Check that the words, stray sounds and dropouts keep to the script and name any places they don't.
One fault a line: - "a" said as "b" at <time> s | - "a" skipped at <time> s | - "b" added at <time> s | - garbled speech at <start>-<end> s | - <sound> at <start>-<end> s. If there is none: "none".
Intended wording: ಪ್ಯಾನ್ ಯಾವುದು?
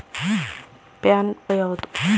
none